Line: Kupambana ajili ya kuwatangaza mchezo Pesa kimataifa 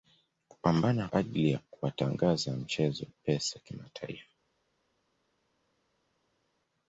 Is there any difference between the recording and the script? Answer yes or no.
no